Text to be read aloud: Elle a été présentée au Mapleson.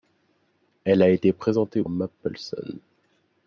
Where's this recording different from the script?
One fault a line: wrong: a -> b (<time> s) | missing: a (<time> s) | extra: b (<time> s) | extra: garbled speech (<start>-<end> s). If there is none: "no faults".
no faults